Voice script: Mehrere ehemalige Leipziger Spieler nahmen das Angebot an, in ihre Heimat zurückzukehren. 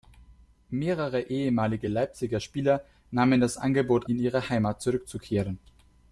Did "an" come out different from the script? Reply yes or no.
yes